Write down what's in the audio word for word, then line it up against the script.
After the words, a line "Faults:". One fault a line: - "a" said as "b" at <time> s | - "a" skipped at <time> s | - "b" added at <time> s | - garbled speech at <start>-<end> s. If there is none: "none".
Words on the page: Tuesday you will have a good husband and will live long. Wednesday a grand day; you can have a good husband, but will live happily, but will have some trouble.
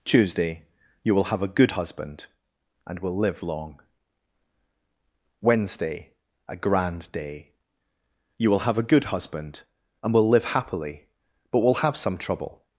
Tuesday you will have a good husband and will live long. Wednesday a grand day; you will have a good husband, and will live happily, but will have some trouble.
Faults:
- "can" said as "will" at 8.5 s
- "but" said as "and" at 10.0 s